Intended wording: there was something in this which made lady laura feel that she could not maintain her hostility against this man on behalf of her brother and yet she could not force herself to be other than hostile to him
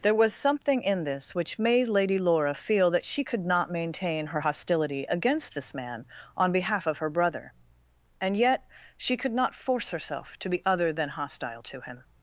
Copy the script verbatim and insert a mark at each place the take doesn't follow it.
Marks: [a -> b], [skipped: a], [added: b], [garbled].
there was something in this which made lady laura feel that she could not maintain her hostility against this man on behalf of her brother and yet she could not force herself to be other than hostile to him